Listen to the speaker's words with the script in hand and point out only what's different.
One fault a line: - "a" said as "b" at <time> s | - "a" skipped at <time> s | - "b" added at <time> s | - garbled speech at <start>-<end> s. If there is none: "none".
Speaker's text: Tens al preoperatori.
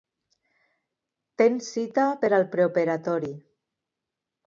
- "cita per" added at 1.8 s